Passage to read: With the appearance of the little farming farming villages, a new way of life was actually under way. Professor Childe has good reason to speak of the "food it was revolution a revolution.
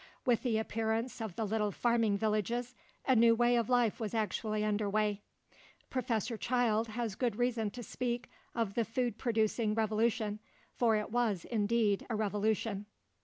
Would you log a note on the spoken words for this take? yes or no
yes